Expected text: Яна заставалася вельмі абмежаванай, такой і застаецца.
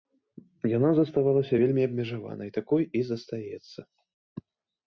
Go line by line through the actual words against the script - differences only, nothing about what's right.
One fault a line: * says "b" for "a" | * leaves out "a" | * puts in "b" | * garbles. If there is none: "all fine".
all fine